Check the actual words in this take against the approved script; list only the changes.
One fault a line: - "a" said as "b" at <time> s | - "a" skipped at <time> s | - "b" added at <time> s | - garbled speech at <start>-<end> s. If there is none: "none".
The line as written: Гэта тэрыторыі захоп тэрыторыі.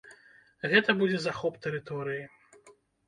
- "тэрыторыі" said as "будзе" at 1.0 s